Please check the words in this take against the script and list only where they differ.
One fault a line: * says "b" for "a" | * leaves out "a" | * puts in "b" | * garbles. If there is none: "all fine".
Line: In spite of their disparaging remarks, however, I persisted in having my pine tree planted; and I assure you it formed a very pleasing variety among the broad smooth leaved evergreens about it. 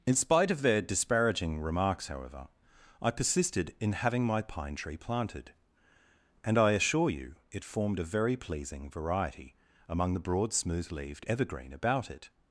* says "evergreen" for "evergreens"